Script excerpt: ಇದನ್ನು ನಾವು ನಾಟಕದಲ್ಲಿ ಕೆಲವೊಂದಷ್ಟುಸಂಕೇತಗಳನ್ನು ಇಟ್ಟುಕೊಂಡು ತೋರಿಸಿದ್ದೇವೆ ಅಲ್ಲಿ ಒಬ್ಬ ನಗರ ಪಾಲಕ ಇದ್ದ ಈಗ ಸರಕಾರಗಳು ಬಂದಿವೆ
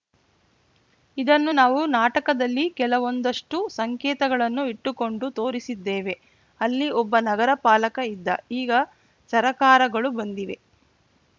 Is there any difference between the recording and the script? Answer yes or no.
no